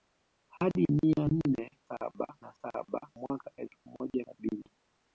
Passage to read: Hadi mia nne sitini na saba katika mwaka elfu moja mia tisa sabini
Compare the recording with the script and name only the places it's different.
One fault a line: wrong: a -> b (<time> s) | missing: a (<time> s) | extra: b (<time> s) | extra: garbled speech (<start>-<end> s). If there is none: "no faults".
wrong: sitini -> saba (1.8 s)
missing: katika (3.1 s)
missing: mia tisa (4.2 s)